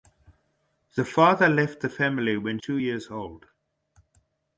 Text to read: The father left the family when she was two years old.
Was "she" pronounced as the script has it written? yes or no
no